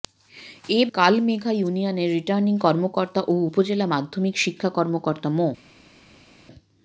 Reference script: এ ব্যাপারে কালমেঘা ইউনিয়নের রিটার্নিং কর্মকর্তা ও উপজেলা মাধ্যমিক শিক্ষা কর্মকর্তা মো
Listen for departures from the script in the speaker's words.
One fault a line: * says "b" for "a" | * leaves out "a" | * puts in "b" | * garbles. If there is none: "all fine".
* leaves out "ব্যাপারে"